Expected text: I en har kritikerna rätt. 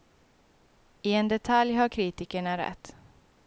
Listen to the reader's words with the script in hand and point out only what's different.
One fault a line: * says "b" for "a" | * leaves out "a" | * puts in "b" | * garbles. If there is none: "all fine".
* puts in "detalj"